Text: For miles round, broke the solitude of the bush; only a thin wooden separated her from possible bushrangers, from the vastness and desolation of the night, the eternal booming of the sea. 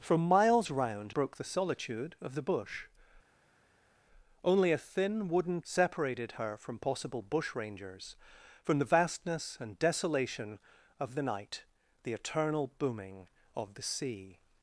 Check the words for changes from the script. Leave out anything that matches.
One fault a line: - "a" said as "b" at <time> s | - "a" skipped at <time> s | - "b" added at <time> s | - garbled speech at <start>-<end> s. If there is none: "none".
none